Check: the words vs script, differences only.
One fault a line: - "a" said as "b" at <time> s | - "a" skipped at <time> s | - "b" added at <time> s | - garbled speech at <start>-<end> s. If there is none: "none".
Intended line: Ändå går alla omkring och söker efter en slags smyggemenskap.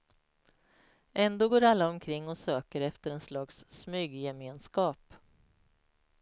none